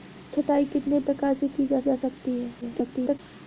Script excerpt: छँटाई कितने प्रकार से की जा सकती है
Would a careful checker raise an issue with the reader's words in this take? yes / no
yes